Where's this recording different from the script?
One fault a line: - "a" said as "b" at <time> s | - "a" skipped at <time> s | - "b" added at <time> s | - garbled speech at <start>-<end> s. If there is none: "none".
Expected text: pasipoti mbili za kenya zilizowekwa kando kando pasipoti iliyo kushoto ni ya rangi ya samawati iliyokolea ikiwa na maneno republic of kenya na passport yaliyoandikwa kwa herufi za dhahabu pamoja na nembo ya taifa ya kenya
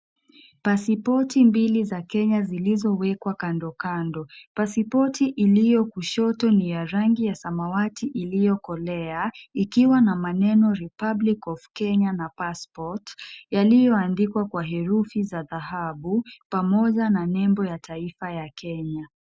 none